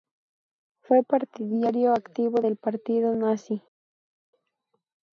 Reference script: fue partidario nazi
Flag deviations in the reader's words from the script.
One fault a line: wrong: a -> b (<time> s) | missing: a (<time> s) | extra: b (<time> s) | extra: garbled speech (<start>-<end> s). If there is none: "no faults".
extra: activo del partido (1.9 s)